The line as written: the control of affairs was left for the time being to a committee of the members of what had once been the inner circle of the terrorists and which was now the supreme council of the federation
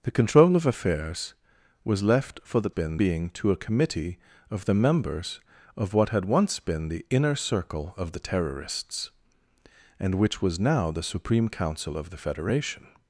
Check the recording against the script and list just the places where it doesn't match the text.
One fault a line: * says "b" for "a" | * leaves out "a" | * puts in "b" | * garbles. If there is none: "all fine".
* says "been" for "time"